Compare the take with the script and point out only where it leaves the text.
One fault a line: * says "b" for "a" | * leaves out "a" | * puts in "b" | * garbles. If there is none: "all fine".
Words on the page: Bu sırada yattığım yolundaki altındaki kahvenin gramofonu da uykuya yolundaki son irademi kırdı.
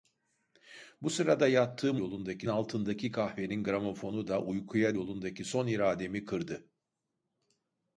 all fine